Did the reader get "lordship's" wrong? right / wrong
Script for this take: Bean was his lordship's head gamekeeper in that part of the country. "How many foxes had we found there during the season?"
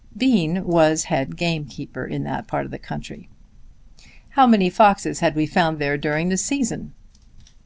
wrong